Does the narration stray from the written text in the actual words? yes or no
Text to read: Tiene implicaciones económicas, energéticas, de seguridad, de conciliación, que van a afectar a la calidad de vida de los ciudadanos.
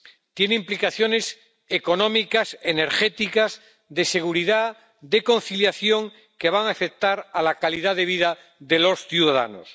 no